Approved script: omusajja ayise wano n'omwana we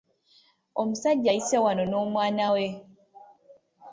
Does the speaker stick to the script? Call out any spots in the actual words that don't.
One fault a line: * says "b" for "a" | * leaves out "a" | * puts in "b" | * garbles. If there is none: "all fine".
all fine